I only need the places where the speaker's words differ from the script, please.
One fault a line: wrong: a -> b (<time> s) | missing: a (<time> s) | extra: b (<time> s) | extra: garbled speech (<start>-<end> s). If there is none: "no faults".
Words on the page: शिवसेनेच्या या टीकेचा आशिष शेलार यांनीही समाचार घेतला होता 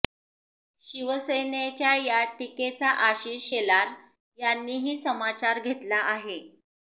wrong: होता -> आहे (6.0 s)